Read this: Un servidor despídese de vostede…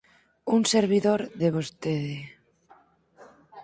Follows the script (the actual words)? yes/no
no